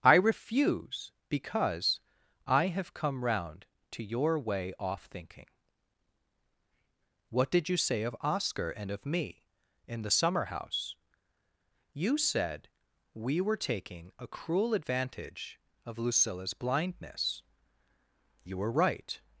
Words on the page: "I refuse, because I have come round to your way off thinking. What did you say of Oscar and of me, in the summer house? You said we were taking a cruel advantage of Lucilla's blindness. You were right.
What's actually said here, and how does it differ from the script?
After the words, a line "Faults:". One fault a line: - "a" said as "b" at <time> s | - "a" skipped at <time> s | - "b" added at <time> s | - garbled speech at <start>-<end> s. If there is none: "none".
"I refuse, because I have come round to your way off thinking. What did you say of Oscar and of me, in the summer house? You said we were taking a cruel advantage of Lucilla's blindness. You were right.
Faults:
none